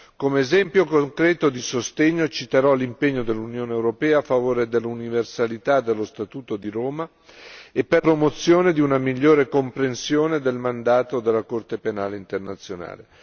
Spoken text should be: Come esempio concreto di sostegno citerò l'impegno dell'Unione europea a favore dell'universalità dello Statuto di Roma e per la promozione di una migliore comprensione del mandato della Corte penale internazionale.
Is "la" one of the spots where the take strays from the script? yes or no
yes